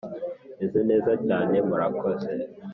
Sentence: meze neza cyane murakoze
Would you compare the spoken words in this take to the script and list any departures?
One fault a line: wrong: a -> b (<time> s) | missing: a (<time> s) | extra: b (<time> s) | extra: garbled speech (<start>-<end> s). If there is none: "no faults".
no faults